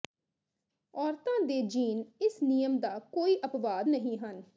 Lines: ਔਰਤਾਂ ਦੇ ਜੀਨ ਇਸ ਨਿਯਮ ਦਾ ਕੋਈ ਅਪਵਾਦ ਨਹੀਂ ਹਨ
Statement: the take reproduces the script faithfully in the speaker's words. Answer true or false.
true